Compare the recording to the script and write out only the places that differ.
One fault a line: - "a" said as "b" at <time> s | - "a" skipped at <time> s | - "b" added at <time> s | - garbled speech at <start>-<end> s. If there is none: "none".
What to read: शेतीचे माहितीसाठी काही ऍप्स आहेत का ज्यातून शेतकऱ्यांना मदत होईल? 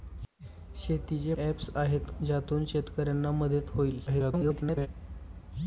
- "माहितीसाठी काही" skipped at 1.3 s
- "का" skipped at 2.1 s
- garbled speech at 4.1-4.9 s